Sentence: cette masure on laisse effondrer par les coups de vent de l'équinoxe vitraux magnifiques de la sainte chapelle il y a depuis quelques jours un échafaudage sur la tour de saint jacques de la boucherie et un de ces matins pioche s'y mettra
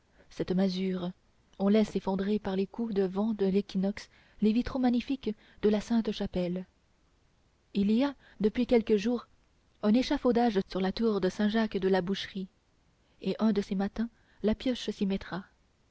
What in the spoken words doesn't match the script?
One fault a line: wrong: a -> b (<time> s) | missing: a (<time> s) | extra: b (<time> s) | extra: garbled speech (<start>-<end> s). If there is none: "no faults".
extra: les (4.4 s)
extra: la (14.4 s)